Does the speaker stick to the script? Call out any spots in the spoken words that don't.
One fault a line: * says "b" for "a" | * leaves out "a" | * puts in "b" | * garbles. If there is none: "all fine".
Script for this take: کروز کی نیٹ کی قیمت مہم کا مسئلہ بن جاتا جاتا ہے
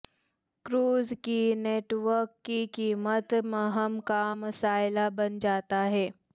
* puts in "ورک"
* leaves out "جاتا"